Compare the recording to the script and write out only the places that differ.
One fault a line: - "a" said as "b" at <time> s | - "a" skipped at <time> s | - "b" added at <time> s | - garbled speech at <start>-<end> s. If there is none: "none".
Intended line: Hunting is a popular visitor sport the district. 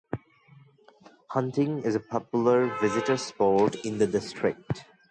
- "in" added at 3.8 s